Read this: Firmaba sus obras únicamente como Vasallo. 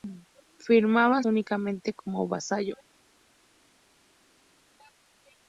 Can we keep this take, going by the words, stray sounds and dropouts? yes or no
no